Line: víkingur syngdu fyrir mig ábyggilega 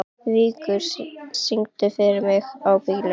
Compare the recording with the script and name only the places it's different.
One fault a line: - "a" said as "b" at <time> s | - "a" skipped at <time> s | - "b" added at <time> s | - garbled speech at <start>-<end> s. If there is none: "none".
none